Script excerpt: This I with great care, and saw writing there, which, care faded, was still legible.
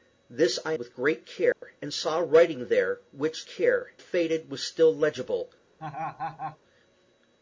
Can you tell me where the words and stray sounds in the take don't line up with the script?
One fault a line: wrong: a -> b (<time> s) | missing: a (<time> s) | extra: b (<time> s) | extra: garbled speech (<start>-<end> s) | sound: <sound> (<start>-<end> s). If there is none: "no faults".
sound: dropout (1.5-1.6 s)
sound: laugh (5.8-6.6 s)